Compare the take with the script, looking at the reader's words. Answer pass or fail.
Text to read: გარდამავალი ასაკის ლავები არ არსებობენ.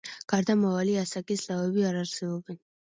pass